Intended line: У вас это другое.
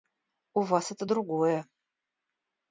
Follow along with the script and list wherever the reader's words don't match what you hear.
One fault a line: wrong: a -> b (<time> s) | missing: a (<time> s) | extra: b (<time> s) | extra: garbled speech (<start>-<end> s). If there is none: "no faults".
no faults